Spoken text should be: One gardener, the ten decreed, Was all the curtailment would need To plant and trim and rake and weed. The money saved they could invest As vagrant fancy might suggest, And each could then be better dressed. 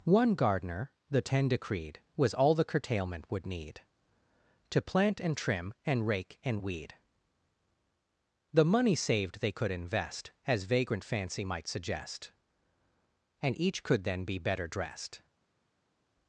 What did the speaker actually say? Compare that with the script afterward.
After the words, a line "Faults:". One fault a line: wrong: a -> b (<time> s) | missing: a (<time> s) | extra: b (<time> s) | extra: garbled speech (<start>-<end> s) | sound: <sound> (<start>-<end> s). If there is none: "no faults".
One gardener, the ten decreed, Was all the curtailment would need To plant and trim and rake and weed. The money saved they could invest As vagrant fancy might suggest, And each could then be better dressed.
Faults:
no faults